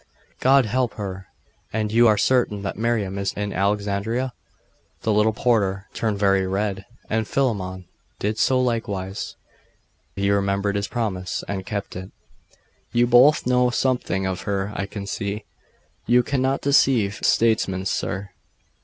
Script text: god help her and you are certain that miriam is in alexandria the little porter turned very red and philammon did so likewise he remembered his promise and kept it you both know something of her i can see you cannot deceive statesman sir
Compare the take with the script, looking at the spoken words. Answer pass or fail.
pass